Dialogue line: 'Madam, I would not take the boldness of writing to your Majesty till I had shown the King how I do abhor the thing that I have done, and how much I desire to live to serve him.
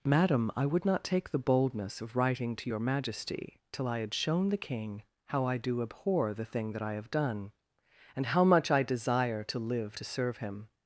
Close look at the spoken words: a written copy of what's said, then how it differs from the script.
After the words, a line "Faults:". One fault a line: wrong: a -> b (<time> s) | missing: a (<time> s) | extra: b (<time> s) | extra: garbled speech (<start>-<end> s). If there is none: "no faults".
'Madam, I would not take the boldness of writing to your Majesty till I had shown the King how I do abhor the thing that I have done, and how much I desire to live to serve him.
Faults:
no faults